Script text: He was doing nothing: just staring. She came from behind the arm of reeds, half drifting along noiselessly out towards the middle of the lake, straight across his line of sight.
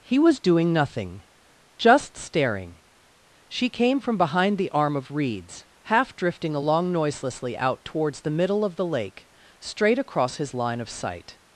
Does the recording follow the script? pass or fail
pass